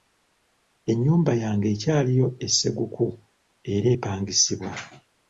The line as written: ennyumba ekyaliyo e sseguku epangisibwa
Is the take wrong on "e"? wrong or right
right